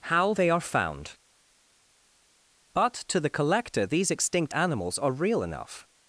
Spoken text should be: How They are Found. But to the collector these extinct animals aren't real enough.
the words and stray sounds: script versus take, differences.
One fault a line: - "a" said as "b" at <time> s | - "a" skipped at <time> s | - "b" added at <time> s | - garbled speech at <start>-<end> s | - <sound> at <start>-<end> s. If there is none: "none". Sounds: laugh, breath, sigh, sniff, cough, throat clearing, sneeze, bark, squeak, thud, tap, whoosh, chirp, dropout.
- "aren't" said as "are" at 5.0 s